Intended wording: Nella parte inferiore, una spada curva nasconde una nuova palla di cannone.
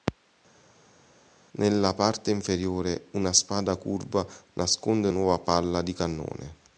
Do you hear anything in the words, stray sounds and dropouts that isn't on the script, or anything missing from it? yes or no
yes